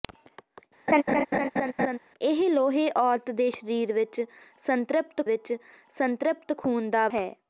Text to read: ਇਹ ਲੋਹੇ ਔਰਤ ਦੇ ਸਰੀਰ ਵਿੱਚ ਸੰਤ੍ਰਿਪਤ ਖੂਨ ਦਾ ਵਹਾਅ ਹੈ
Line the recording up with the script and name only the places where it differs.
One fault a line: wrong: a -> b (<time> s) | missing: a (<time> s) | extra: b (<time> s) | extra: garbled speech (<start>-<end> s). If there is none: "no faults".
extra: ਵਿੱਚ ਸੰਤ੍ਰਿਪਤ (5.3 s)
missing: ਵਹਾਅ (7.1 s)